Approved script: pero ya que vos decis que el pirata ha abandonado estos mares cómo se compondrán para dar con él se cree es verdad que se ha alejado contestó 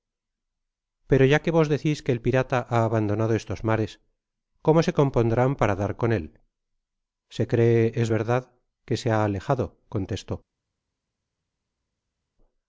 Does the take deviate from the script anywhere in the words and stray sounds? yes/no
no